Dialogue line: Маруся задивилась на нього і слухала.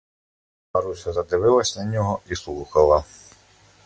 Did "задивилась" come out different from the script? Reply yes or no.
no